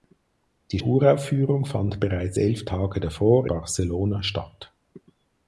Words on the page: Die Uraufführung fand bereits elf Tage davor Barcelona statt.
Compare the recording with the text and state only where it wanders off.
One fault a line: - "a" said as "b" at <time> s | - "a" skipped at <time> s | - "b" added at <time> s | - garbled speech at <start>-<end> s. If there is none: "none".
none